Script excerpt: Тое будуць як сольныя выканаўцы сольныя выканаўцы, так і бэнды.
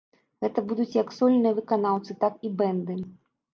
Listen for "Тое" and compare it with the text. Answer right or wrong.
wrong